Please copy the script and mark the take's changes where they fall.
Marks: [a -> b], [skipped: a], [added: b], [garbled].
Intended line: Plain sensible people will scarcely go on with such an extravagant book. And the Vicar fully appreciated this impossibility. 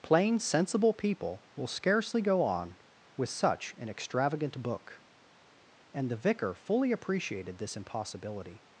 Plain sensible people will scarcely go on with such an extravagant book. And the Vicar fully appreciated this impossibility.